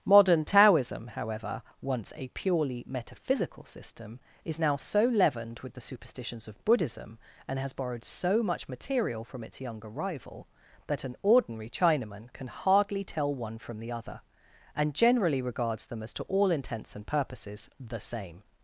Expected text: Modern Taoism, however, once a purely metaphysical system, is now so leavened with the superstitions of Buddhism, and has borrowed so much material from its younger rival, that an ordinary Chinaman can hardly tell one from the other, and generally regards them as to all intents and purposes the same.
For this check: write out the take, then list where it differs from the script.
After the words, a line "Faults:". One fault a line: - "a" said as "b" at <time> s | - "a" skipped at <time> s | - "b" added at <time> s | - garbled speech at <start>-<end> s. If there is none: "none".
Modern Taoism, however, once a purely metaphysical system, is now so leavened with the superstitions of Buddhism, and has borrowed so much material from its younger rival, that an ordinary Chinaman can hardly tell one from the other, and generally regards them as to all intents and purposes the same.
Faults:
none